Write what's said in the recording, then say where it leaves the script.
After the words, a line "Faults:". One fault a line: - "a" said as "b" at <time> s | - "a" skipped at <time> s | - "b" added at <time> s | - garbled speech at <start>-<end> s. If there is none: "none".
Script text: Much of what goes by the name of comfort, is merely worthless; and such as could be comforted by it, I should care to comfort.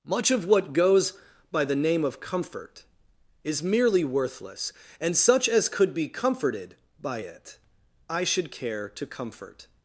Much of what goes by the name of comfort, is merely worthless; and such as could be comforted by it, I should care to comfort.
Faults:
none